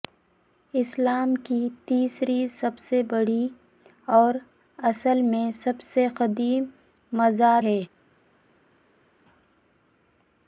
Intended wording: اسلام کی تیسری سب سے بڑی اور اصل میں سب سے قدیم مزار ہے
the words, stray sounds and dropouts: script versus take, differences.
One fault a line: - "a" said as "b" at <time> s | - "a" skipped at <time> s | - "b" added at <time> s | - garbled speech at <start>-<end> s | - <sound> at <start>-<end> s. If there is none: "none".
none